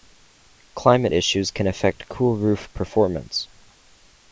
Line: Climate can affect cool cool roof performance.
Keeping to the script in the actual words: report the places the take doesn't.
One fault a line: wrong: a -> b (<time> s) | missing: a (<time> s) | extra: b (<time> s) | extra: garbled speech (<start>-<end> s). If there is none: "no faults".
extra: issues (1.1 s)
missing: cool (2.4 s)